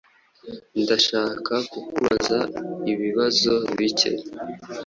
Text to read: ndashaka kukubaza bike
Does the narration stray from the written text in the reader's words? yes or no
yes